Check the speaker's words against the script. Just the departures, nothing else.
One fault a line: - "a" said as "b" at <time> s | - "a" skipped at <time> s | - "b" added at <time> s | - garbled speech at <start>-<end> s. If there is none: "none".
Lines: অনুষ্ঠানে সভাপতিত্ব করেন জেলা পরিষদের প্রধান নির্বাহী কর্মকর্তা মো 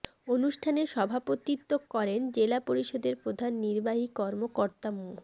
none